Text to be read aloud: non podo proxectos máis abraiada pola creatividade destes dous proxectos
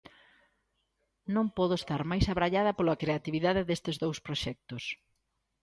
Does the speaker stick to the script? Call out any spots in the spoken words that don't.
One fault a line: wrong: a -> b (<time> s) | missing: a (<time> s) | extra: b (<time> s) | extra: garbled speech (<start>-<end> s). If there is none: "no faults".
wrong: proxectos -> estar (1.8 s)